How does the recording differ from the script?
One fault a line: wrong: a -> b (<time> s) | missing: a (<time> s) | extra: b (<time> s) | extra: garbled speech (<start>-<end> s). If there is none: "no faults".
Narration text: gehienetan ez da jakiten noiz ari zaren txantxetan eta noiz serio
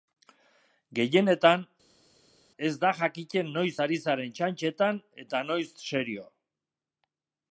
no faults